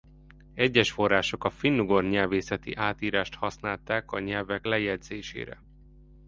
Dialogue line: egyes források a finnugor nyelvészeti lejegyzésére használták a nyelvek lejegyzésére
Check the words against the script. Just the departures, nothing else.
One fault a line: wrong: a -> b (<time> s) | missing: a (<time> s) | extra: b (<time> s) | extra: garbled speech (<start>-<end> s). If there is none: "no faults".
wrong: lejegyzésére -> átírást (2.7 s)